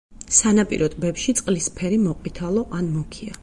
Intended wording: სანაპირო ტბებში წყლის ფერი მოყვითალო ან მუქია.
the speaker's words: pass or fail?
pass